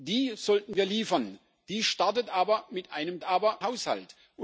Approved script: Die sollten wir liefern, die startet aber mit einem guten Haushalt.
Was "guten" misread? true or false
true